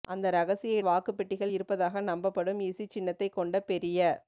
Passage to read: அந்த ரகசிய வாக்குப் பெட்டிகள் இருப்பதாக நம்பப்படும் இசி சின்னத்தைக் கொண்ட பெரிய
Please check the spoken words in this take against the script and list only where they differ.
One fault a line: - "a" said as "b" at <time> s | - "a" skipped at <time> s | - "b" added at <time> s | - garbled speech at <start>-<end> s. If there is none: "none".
none